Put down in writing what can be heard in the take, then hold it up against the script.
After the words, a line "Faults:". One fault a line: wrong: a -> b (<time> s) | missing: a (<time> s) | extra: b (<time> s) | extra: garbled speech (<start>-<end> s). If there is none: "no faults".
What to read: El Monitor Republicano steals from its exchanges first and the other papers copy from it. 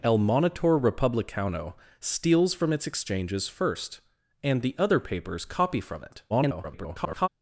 El Monitor Republicano steals from its exchanges first and the other papers copy from it. [garbled]
Faults:
extra: garbled speech (6.3-7.3 s)